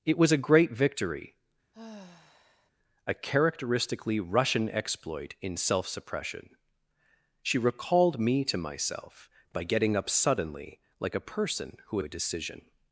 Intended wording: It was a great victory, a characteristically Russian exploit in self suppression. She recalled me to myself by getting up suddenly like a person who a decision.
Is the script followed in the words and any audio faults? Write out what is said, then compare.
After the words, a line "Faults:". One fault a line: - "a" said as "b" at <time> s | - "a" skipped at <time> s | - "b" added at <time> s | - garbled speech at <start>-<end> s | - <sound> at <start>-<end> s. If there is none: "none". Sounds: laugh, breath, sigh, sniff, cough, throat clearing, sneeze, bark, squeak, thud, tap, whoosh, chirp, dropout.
It was a great victory, a characteristically Russian exploit in self suppression. She recalled me to myself by getting up suddenly like a person who a decision.
Faults:
- sigh at 1.7-2.7 s